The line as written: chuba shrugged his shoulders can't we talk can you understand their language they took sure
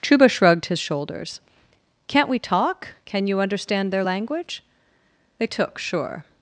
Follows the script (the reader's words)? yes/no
yes